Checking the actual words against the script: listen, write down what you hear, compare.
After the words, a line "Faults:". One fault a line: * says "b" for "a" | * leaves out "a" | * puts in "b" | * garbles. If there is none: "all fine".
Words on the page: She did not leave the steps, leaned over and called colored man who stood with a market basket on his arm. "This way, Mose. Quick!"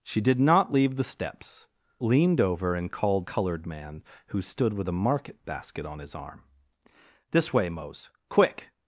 She did not leave the steps, leaned over and called colored man who stood with a market basket on his arm. "This way, Mose. Quick!"
Faults:
all fine